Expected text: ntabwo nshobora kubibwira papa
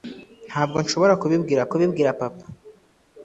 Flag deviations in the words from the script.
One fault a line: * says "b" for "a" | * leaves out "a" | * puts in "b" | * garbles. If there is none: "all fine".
* puts in "kubibwira"